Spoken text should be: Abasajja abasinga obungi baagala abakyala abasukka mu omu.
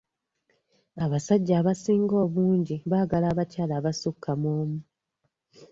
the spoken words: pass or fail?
pass